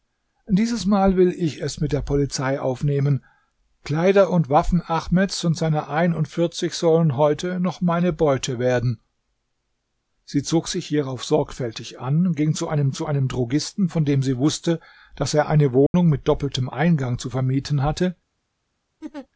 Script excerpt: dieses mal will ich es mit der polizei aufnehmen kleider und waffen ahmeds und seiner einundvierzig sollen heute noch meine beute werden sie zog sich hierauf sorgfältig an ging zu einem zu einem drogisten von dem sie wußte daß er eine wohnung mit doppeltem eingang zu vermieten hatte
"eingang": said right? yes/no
yes